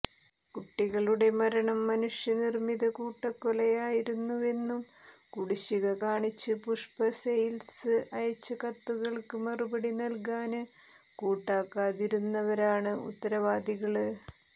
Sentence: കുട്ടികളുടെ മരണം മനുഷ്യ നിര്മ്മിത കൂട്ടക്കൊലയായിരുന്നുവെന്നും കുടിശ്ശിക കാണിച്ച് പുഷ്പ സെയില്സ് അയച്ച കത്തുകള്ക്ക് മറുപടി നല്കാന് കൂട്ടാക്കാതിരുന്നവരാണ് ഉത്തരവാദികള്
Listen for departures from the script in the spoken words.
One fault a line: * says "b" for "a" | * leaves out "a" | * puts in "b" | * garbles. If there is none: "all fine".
all fine